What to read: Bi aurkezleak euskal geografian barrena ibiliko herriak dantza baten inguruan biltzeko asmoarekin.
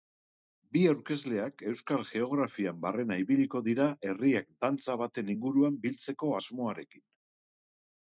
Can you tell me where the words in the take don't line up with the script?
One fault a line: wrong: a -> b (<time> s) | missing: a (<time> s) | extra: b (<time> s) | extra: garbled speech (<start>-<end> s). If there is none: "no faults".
extra: dira (3.7 s)